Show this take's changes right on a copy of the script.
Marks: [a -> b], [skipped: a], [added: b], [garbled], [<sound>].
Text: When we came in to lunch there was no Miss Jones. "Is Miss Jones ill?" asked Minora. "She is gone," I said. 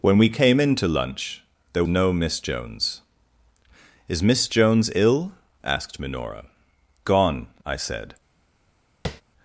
When we came in to lunch there [skipped: was] no Miss Jones. "Is Miss Jones ill?" asked Minora. [skipped: "She is] gone," I said. [tap]